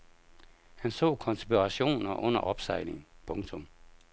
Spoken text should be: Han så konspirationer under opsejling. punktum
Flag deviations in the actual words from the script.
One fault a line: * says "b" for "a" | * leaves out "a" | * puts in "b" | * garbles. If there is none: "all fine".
all fine